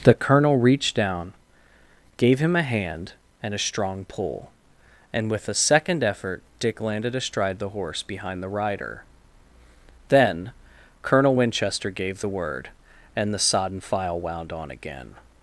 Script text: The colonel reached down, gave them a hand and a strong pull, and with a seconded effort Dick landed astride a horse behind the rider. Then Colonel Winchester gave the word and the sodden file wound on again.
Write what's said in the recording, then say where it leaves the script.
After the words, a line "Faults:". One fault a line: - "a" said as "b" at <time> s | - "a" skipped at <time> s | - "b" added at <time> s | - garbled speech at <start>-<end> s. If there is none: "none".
The colonel reached down, gave him a hand and a strong pull, and with a second effort Dick landed astride the horse behind the rider. Then Colonel Winchester gave the word and the sodden file wound on again.
Faults:
- "them" said as "him" at 2.4 s
- "seconded" said as "second" at 5.5 s
- "a" said as "the" at 7.6 s